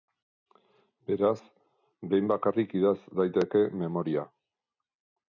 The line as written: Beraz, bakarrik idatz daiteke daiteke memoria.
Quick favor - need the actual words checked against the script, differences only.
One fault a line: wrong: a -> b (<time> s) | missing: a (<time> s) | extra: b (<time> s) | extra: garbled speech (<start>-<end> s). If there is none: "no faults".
extra: behin (2.1 s)
missing: daiteke (3.6 s)